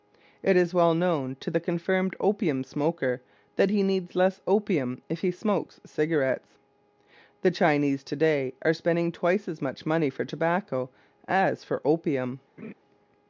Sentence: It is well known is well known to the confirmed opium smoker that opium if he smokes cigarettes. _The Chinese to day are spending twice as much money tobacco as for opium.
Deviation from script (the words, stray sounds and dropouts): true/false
true